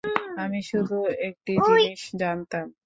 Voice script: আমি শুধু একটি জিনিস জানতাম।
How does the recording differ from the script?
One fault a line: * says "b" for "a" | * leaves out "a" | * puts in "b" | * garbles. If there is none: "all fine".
all fine